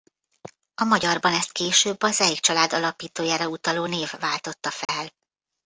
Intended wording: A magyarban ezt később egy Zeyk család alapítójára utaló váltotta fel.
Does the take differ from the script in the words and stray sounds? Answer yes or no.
yes